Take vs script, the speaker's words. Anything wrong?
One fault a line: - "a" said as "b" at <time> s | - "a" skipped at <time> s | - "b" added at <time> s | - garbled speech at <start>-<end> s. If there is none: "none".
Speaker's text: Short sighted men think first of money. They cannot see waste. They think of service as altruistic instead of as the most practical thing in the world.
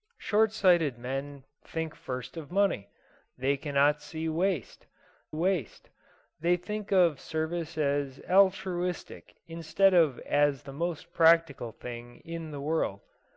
- "waste" added at 5.3 s